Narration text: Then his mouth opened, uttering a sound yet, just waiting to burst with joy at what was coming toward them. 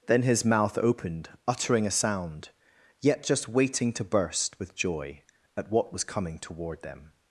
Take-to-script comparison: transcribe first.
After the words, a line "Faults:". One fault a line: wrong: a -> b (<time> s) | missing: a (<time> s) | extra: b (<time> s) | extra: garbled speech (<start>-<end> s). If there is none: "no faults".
Then his mouth opened, uttering a sound yet, just waiting to burst with joy at what was coming toward them.
Faults:
no faults